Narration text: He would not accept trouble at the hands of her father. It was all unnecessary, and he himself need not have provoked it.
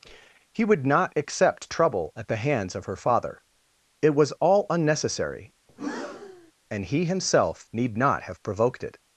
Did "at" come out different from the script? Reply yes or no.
no